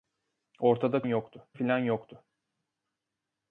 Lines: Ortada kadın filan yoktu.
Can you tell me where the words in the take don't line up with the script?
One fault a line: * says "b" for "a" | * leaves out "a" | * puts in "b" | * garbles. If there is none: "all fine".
* says "yoktu" for "kadın"